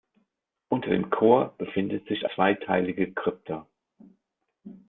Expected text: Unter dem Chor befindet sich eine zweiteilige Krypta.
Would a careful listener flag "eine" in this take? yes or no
yes